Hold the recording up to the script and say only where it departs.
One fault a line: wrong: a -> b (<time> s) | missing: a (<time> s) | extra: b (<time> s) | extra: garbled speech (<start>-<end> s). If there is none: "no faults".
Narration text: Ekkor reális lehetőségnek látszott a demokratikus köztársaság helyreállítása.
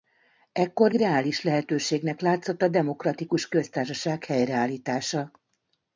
no faults